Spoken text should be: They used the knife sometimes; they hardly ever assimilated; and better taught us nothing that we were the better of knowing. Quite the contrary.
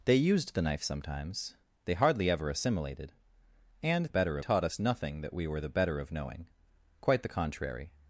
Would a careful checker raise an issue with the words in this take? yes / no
no